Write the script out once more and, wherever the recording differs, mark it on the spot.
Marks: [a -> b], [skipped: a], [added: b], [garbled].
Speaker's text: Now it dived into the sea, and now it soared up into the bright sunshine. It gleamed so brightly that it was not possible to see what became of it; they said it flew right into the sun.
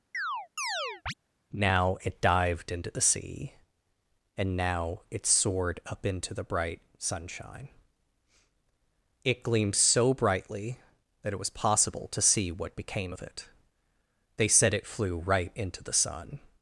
Now it dived into the sea, and now it soared up into the bright sunshine. It gleamed so brightly that it was [skipped: not] possible to see what became of it; they said it flew right into the sun.